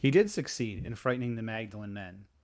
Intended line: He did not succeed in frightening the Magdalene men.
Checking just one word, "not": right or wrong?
wrong